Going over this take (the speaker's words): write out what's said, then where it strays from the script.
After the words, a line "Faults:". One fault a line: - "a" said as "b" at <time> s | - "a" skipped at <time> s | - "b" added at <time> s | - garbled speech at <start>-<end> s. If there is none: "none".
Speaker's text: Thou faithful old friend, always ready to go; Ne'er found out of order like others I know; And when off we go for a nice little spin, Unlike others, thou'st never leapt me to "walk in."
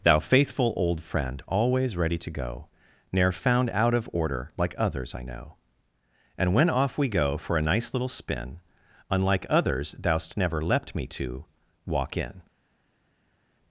Thou faithful old friend, always ready to go; Ne'er found out of order like others I know; And when off we go for a nice little spin, Unlike others, thou'st never leapt me to "walk in."
Faults:
none